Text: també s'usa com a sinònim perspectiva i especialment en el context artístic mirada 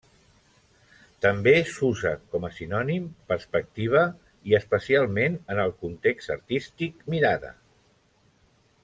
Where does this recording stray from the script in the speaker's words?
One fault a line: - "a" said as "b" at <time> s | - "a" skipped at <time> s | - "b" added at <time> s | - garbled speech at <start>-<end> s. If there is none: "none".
none